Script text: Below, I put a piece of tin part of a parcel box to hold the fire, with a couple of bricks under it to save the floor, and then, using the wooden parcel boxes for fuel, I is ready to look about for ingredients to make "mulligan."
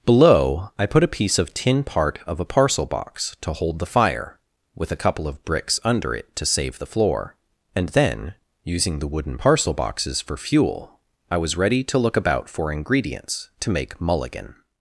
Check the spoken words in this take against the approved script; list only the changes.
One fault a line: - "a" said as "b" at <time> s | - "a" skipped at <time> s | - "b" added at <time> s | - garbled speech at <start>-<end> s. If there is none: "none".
- "is" said as "was" at 11.4 s